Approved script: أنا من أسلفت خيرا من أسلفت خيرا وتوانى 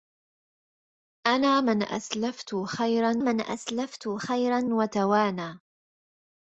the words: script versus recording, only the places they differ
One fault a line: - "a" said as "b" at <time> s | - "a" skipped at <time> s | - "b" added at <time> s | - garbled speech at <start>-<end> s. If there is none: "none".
none